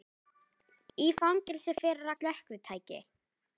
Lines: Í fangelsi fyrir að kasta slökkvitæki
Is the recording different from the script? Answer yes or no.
yes